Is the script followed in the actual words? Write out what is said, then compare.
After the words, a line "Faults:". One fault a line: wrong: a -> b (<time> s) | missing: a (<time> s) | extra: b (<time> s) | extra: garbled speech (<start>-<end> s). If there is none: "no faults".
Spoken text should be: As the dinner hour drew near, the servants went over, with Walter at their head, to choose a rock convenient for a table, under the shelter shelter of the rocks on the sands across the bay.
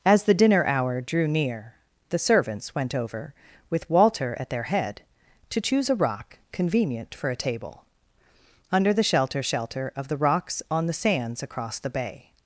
As the dinner hour drew near, the servants went over, with Walter at their head, to choose a rock convenient for a table, under the shelter shelter of the rocks on the sands across the bay.
Faults:
no faults